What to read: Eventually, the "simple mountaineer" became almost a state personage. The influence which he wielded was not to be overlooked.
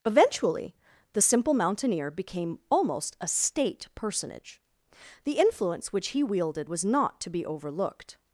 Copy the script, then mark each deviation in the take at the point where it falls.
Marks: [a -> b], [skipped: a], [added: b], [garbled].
Eventually, the "simple mountaineer" became almost a state personage. The influence which he wielded was not to be overlooked.